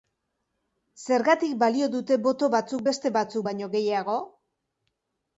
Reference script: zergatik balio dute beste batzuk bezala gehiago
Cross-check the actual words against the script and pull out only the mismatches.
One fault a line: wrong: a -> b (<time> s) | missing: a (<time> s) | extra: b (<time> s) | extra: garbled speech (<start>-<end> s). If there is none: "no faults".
extra: boto batzuk (2.3 s)
wrong: bezala -> baino (3.5 s)